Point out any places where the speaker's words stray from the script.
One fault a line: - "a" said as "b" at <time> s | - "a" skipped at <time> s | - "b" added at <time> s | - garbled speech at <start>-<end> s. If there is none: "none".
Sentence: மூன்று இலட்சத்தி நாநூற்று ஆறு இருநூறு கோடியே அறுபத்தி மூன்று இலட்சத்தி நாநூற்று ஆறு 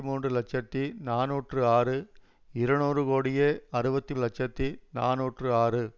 - "மூன்று" skipped at 4.1 s